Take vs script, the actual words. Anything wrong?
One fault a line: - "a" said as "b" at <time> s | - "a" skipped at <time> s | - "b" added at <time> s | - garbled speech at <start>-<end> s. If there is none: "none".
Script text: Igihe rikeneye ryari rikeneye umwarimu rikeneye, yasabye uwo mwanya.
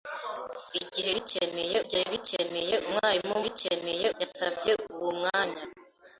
none